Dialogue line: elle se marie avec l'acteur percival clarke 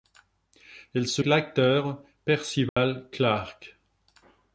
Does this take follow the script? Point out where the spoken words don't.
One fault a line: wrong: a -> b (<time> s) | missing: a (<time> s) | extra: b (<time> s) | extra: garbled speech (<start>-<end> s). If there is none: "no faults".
missing: marie avec (1.2 s)